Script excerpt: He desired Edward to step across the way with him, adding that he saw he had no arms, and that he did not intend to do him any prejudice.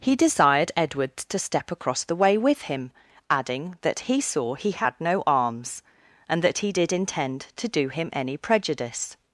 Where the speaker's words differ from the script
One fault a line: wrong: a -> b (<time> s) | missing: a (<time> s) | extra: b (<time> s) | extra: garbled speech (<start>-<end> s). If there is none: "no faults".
missing: not (6.9 s)